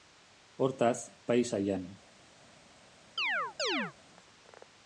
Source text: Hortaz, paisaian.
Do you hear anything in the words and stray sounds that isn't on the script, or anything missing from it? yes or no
yes